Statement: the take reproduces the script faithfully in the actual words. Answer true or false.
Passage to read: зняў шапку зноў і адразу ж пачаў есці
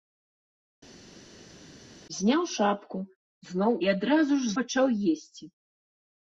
true